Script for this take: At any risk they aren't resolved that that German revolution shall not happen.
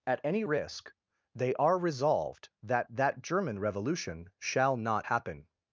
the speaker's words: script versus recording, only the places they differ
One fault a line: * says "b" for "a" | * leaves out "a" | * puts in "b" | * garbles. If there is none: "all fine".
* says "are" for "aren't"